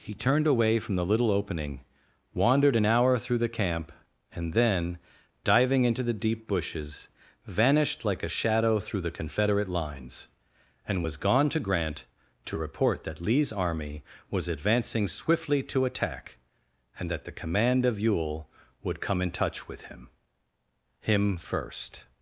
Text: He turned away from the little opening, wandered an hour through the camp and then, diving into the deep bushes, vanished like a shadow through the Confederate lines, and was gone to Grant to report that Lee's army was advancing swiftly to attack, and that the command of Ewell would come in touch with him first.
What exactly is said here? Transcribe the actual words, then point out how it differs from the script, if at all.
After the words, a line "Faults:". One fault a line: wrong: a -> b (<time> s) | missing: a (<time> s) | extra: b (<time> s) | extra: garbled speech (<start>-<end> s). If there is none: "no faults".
He turned away from the little opening, wandered an hour through the camp and then, diving into the deep bushes, vanished like a shadow through the Confederate lines, and was gone to Grant to report that Lee's army was advancing swiftly to attack, and that the command of Ewell would come in touch with him him first.
Faults:
extra: him (21.0 s)